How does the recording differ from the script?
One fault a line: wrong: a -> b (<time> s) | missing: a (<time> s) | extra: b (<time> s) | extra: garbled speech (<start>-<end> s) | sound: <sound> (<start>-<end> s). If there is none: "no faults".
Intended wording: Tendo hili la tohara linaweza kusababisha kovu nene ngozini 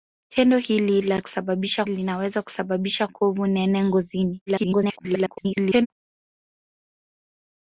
wrong: tohara -> kusababisha (1.2 s)
extra: garbled speech (4.5-5.9 s)